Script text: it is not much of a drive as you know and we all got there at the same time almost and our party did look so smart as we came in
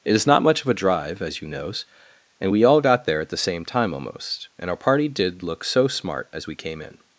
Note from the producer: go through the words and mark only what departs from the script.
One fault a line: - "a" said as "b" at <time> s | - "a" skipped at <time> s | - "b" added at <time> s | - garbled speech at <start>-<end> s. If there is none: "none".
- "know" said as "knows" at 1.5 s